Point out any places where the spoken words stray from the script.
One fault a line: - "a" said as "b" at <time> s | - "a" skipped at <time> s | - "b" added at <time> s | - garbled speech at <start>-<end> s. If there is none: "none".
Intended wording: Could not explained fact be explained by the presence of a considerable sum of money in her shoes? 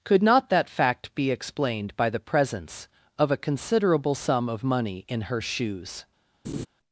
- "explained" said as "that" at 0.5 s